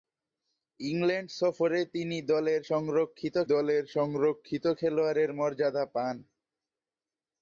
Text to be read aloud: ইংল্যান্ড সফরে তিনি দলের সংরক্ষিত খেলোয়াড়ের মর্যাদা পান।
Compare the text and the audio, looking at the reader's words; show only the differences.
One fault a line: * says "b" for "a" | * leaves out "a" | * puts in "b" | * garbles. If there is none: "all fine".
* puts in "দলের সংরক্ষিত"